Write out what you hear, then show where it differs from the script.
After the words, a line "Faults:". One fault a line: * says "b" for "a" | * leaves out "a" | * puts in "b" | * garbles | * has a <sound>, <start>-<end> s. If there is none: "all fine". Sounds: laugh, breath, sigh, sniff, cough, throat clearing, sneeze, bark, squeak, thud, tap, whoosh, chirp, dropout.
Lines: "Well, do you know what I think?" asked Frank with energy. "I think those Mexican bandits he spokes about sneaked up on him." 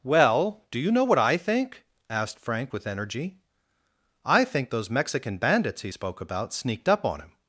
"Well, do you know what I think?" asked Frank with energy. "I think those Mexican bandits he spoke about sneaked up on him."
Faults:
* says "spoke" for "spokes"